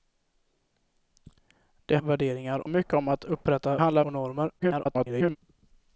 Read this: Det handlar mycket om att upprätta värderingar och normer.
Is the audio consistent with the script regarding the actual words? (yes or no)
no